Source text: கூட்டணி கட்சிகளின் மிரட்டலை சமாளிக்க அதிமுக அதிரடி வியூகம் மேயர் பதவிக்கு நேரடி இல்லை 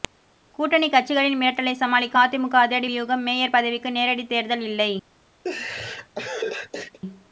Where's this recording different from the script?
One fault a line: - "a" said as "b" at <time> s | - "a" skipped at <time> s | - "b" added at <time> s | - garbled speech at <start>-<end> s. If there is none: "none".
- "தேர்தல்" added at 4.3 s